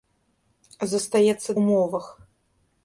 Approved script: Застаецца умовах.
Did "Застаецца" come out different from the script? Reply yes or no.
no